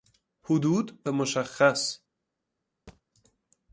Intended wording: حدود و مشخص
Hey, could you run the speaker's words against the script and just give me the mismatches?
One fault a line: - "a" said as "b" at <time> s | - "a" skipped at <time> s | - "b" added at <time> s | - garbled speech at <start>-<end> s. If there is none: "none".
none